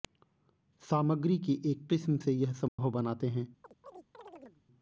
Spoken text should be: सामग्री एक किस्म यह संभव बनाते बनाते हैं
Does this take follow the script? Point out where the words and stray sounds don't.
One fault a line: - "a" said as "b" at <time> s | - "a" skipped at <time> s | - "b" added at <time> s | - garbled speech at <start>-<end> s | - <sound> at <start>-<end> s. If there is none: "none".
- "की" added at 1.4 s
- "से" added at 2.2 s
- dropout at 2.7-2.8 s
- "बनाते" skipped at 3.3 s
- chirp at 3.6-4.6 s